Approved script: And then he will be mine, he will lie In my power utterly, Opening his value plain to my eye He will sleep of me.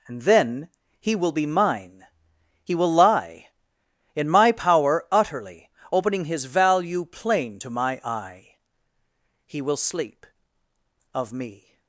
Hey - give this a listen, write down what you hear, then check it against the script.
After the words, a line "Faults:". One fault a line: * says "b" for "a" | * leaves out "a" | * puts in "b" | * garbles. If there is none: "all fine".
And then he will be mine, he will lie In my power utterly, Opening his value plain to my eye He will sleep of me.
Faults:
all fine